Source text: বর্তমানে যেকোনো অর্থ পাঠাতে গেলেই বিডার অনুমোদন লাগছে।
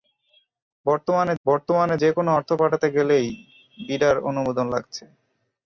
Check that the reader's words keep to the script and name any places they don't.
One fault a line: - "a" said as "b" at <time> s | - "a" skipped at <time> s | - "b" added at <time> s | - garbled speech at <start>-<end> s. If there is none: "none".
- "বর্তমানে" added at 1.5 s